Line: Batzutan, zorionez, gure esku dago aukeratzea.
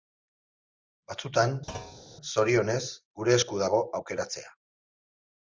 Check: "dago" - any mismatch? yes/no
no